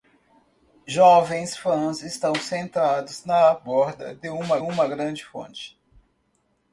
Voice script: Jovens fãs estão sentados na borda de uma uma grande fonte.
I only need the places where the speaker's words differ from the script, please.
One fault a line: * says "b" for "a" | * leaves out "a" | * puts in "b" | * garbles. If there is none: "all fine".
all fine